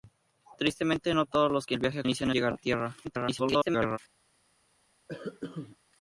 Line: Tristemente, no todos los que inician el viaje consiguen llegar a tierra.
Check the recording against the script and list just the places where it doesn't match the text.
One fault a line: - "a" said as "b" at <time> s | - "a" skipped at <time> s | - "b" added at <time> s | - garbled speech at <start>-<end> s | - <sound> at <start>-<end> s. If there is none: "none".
- "inician" skipped at 1.8 s
- "consiguen" said as "inician" at 2.0 s
- garbled speech at 3.0-4.0 s
- cough at 5.1-5.8 s